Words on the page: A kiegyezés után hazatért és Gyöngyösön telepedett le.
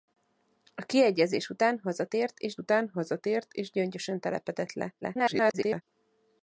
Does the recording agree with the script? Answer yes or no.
no